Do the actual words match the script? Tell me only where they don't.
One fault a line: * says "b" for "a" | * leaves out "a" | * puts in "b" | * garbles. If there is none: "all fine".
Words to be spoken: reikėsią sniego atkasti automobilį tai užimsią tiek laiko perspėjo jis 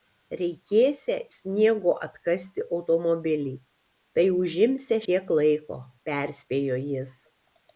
all fine